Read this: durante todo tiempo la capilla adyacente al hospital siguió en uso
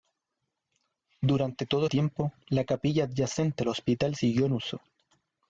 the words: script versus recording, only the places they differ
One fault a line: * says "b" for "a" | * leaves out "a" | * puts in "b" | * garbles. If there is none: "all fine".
all fine